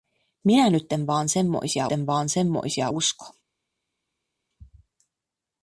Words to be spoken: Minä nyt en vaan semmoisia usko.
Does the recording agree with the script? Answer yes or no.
no